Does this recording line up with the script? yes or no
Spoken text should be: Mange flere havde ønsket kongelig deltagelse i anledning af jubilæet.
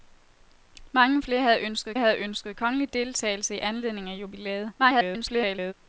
no